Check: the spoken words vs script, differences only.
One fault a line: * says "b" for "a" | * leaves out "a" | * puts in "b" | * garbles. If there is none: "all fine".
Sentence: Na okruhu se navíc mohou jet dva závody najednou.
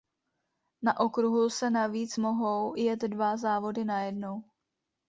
all fine